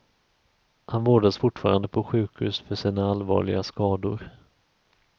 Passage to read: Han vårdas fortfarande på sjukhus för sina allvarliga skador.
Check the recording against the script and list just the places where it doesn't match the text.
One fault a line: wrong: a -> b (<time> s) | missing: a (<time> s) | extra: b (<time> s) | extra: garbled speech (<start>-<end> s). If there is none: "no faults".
no faults